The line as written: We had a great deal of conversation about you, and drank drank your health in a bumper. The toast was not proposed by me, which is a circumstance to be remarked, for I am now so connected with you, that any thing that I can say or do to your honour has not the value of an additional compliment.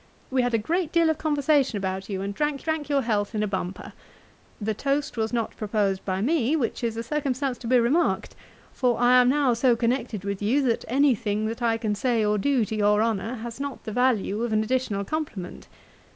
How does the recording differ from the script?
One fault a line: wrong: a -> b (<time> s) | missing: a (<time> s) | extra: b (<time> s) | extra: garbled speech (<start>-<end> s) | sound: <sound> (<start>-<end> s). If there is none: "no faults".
no faults